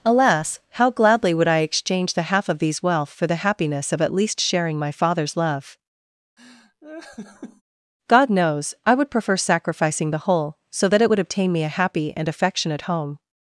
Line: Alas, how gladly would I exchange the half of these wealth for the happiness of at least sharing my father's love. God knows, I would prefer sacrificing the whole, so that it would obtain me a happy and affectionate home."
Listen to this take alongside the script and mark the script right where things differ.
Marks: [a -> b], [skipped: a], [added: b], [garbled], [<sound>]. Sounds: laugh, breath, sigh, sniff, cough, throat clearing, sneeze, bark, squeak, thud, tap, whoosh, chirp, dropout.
Alas, how gladly would I exchange the half of these wealth for the happiness of at least sharing my father's love. [laugh] God knows, I would prefer sacrificing the whole, so that it would obtain me a happy and affectionate home."